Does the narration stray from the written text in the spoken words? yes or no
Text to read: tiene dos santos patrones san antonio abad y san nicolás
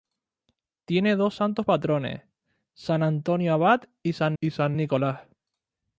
yes